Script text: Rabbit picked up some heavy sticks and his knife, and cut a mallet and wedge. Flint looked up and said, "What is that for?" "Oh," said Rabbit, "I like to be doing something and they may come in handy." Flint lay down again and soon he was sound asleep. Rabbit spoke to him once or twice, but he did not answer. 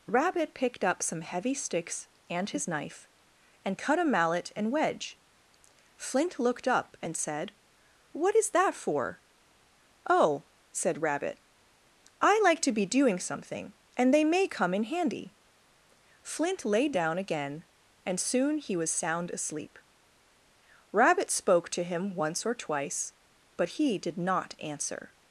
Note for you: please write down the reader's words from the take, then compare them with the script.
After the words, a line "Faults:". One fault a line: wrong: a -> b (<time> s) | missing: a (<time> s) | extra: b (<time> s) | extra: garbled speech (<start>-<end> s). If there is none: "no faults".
Rabbit picked up some heavy sticks and his knife, and cut a mallet and wedge. Flint looked up and said, "What is that for?" "Oh," said Rabbit, "I like to be doing something and they may come in handy." Flint lay down again and soon he was sound asleep. Rabbit spoke to him once or twice, but he did not answer.
Faults:
no faults